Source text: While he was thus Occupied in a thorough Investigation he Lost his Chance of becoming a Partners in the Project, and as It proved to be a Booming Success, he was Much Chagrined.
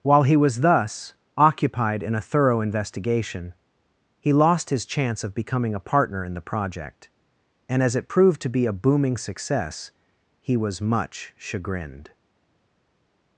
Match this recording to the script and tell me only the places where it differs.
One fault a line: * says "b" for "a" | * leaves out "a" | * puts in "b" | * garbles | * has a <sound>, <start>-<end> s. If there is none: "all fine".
* says "Partner" for "Partners"